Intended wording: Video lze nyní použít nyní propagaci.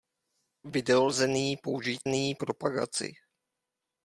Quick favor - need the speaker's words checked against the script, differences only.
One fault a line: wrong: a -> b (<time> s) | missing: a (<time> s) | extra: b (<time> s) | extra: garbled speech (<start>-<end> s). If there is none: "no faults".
no faults